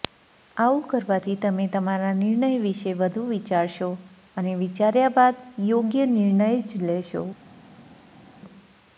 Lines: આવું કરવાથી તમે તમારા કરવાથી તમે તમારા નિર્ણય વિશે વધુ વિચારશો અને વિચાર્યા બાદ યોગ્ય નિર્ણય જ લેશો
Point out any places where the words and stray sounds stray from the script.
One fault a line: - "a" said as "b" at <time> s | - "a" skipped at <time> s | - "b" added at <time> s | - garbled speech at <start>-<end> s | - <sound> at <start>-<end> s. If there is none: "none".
- "કરવાથી તમે તમારા" skipped at 2.1 s